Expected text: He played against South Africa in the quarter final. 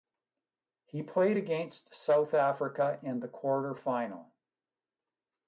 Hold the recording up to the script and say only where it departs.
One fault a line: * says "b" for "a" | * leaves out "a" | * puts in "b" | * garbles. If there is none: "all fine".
all fine